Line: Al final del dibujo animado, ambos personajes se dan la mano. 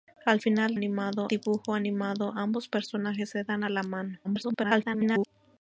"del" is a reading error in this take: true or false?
true